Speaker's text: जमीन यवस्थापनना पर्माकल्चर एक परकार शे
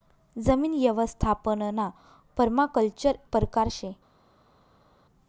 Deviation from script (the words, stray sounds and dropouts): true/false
true